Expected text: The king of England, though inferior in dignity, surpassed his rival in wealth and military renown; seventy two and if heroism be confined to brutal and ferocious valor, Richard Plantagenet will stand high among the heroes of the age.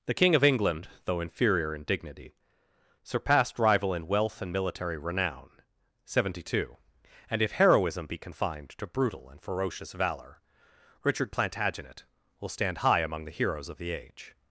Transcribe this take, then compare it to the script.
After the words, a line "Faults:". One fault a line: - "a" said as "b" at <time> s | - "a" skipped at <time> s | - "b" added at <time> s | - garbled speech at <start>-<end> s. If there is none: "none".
The king of England, though inferior in dignity, surpassed rival in wealth and military renown; seventy two and if heroism be confined to brutal and ferocious valor, Richard Plantagenet will stand high among the heroes of the age.
Faults:
- "his" skipped at 3.6 s